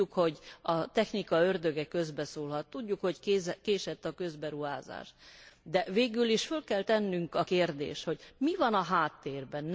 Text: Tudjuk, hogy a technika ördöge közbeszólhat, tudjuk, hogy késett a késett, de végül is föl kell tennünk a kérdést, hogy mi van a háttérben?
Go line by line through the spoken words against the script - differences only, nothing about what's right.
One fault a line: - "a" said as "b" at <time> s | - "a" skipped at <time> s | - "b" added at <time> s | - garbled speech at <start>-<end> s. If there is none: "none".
- "késett" said as "közberuházás" at 4.1 s